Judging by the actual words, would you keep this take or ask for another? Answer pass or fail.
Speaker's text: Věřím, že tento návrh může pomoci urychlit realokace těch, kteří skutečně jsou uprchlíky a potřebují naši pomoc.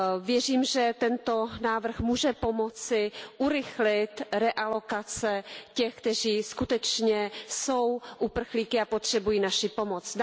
pass